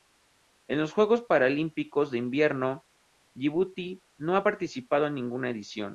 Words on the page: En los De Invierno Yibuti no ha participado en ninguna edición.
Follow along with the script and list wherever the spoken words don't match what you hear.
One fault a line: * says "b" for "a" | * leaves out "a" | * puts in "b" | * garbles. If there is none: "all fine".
* puts in "Juegos Paralímpicos"